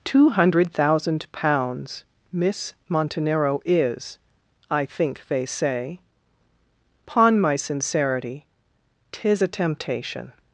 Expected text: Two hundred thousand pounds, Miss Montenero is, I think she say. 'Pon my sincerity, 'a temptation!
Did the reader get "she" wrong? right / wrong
wrong